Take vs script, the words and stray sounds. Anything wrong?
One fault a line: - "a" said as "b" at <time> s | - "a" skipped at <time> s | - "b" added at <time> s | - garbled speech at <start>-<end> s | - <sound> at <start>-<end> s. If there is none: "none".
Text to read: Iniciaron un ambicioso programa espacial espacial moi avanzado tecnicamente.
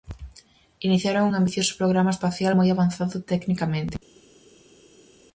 - "espacial" skipped at 2.5 s